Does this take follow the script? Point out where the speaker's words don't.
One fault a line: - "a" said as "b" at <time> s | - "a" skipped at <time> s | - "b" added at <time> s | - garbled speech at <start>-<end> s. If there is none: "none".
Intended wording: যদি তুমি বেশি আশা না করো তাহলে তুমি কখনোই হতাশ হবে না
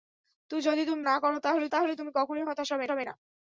- "বেশি আশা" skipped at 1.0 s
- "তাহলে" added at 1.7 s
- "হবে" added at 2.9 s